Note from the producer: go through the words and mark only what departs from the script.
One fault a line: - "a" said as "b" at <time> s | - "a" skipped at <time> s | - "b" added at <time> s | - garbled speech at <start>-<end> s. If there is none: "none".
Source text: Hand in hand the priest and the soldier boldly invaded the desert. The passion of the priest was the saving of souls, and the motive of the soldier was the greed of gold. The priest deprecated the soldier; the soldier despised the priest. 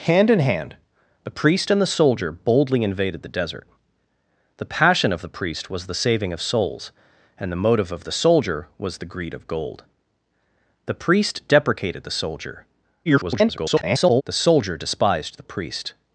- garbled speech at 13.1-14.2 s